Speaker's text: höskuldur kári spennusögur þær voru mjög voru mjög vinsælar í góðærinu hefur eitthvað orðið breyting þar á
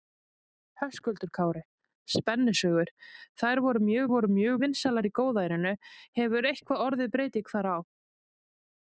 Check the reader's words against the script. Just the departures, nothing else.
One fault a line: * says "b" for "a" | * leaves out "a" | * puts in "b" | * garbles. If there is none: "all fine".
all fine